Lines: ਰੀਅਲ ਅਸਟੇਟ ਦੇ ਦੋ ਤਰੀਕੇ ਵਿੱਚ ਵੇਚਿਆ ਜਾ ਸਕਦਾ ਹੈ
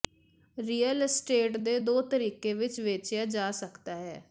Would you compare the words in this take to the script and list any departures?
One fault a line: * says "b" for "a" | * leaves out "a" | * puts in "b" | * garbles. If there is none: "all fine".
all fine